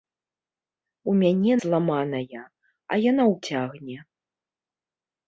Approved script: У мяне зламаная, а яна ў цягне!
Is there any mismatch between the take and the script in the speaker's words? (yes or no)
no